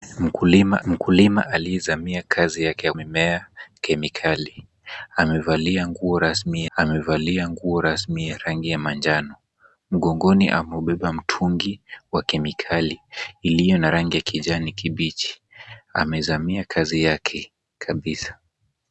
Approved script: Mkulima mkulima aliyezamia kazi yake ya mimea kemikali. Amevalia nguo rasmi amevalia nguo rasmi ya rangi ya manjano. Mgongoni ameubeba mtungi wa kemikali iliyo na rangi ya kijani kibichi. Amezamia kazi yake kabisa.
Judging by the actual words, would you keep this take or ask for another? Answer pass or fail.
pass